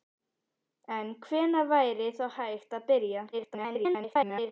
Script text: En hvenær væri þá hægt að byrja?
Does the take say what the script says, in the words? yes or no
no